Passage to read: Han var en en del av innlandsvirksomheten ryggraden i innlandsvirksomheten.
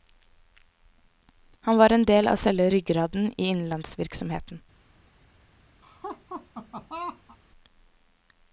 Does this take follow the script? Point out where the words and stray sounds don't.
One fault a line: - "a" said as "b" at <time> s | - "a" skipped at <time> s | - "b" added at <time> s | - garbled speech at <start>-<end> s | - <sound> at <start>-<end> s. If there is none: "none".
- "en" skipped at 2.0 s
- "innlandsvirksomheten" said as "selve" at 2.4 s
- laugh at 5.8-7.4 s